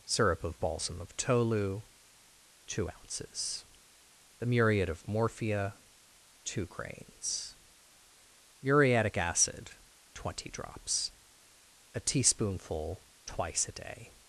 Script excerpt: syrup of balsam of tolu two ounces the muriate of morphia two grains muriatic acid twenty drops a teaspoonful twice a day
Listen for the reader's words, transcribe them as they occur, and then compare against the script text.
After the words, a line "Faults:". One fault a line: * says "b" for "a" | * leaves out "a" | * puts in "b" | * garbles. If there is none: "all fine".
syrup of balsam of tolu two ounces the muriate of morphia two grains muriatic acid twenty drops a teaspoonful twice a day
Faults:
all fine